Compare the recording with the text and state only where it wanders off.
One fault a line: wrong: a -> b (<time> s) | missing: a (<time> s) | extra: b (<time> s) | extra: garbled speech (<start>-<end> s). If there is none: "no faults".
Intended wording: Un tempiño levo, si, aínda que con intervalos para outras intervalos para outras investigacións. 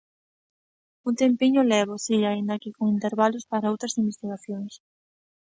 missing: intervalos para outras (4.0 s)